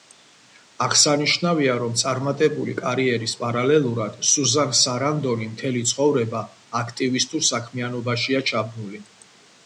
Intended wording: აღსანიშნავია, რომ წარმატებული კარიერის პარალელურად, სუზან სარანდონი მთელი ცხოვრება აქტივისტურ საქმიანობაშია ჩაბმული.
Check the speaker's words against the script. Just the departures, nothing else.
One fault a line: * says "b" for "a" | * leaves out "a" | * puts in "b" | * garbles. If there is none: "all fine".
all fine